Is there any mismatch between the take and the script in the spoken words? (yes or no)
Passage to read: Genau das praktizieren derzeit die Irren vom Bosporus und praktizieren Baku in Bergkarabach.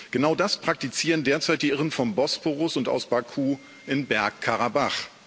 yes